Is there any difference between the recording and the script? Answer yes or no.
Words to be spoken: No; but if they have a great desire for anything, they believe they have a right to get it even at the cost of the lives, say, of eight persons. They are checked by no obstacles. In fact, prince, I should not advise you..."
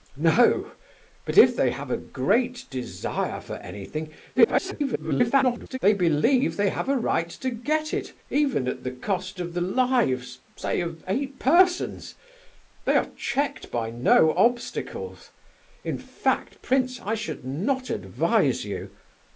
yes